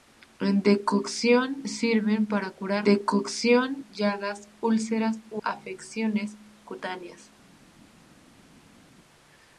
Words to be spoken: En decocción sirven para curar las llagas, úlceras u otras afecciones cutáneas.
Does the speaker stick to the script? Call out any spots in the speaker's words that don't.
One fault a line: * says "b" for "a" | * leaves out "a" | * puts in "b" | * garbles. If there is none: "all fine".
* says "decocción" for "las"
* leaves out "otras"